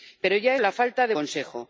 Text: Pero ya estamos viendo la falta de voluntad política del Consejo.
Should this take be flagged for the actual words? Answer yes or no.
yes